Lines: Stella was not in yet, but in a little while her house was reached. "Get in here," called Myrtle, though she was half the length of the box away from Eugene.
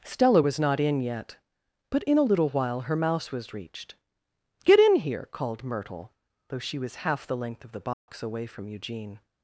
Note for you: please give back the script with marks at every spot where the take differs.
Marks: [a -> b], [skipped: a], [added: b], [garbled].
Stella was not in yet, but in a little while her [house -> mouse] was reached. "Get in here," called Myrtle, though she was half the length of the box away from Eugene.